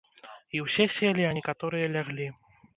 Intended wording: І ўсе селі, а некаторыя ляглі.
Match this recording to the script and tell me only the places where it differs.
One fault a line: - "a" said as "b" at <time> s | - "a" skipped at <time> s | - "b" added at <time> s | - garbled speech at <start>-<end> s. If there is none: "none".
none